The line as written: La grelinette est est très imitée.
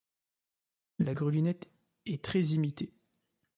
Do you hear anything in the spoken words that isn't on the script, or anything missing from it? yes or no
yes